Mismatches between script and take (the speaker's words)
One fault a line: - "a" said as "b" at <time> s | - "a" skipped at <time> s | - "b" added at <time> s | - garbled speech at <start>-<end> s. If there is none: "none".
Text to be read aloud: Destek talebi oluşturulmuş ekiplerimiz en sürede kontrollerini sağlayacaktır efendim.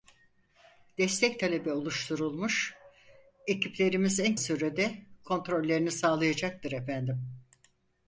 none